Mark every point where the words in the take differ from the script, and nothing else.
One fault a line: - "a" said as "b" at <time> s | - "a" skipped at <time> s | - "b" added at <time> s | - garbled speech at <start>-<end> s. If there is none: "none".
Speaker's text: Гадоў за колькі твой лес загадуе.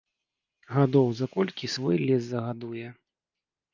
- "твой" said as "свой" at 1.7 s